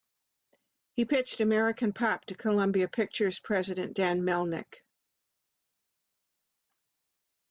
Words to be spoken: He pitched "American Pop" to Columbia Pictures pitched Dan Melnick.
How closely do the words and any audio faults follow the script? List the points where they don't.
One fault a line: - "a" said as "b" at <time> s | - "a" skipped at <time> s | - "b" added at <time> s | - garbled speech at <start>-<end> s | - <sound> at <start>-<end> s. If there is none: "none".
- "pitched" said as "president" at 3.4 s